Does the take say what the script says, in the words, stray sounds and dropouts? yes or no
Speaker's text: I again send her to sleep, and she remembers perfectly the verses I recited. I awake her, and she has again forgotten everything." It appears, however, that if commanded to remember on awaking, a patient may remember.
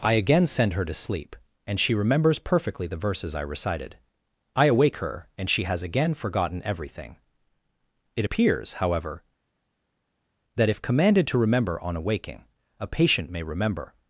yes